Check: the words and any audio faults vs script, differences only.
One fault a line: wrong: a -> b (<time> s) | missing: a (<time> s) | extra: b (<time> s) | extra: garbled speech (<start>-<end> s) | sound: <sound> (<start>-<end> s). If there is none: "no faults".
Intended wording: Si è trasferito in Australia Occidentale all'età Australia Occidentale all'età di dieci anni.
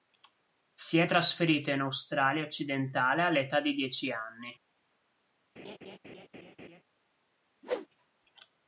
missing: Australia Occidentale all'età (3.6 s)
sound: laugh (5.6-6.8 s)
sound: whoosh (7.6-7.9 s)